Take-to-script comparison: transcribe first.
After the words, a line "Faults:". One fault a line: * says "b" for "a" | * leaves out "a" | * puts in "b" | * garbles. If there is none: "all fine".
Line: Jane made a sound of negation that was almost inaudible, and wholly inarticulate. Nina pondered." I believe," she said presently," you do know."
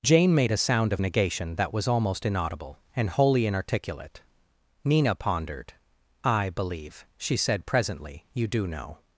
Jane made a sound of negation that was almost inaudible, and wholly inarticulate. Nina pondered." I believe," she said presently," you do know."
Faults:
all fine